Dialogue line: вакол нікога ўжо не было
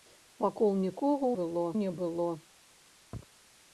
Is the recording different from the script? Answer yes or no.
yes